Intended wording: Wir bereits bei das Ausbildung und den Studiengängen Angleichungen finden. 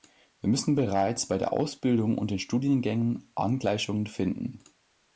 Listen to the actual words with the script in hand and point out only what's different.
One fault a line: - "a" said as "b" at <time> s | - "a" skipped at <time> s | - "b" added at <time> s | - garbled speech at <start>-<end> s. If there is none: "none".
- "müssen" added at 0.5 s
- "das" said as "der" at 1.4 s